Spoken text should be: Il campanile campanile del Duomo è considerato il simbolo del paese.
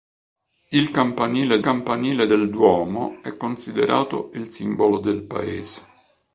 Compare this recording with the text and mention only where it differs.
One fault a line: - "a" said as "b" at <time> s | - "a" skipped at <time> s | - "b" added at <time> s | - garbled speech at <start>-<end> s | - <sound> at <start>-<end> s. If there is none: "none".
none